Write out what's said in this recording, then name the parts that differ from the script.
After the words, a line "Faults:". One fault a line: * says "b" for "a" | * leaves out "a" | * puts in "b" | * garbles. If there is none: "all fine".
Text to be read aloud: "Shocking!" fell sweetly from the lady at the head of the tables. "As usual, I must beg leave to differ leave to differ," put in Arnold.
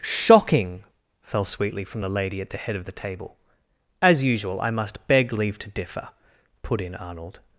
"Shocking!" fell sweetly from the lady at the head of the table. "As usual, I must beg leave to differ," put in Arnold.
Faults:
* says "table" for "tables"
* leaves out "leave to differ"